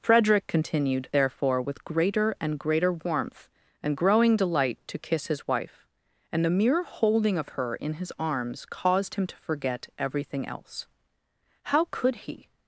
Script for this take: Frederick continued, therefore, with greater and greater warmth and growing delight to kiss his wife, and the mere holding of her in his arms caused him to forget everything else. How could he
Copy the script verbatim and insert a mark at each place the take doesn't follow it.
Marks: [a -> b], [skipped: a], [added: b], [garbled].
Frederick continued, therefore, with greater and greater warmth and growing delight to kiss his wife, and the mere holding of her in his arms caused him to forget everything else. How could he